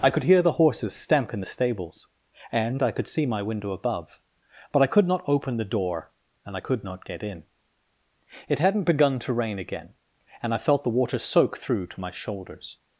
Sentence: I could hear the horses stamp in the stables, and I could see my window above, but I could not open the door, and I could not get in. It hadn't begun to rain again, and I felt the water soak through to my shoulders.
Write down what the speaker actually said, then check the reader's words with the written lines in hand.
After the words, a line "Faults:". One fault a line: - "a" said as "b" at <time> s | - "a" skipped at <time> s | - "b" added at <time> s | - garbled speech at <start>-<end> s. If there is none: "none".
I could hear the horses stamp in the stables, and I could see my window above, but I could not open the door, and I could not get in. It hadn't begun to rain again, and I felt the water soak through to my shoulders.
Faults:
none